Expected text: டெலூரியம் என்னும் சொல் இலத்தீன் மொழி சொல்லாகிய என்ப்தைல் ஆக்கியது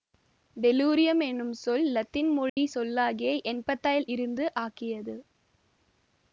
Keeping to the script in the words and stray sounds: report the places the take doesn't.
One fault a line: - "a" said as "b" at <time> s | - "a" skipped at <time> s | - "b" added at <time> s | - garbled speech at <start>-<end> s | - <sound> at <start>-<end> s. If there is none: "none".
- dropout at 2.5-2.6 s
- "இருந்து" added at 4.1 s